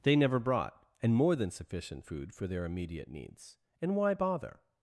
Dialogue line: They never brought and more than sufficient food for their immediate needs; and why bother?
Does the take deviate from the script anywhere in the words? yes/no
no